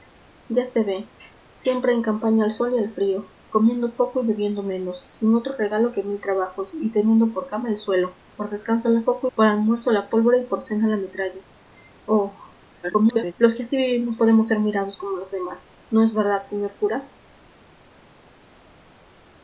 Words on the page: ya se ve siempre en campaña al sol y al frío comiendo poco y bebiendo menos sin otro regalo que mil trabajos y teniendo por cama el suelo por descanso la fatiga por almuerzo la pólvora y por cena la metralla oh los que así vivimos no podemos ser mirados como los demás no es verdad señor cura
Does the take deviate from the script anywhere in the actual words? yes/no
yes